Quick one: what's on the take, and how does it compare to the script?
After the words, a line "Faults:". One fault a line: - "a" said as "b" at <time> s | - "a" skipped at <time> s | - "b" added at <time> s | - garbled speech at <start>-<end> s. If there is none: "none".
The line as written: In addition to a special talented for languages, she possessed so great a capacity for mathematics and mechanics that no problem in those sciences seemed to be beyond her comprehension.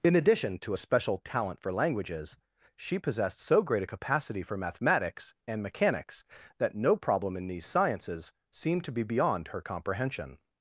In addition to a special talent for languages, she possessed so great a capacity for mathematics and mechanics that no problem in these sciences seemed to be beyond her comprehension.
Faults:
- "talented" said as "talent" at 1.2 s
- "those" said as "these" at 7.5 s